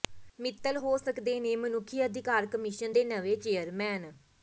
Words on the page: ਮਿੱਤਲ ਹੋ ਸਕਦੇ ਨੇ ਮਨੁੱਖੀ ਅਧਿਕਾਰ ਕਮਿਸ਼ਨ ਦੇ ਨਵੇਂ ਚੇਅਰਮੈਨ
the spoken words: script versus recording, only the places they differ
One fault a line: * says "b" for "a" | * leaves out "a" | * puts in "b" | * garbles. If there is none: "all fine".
all fine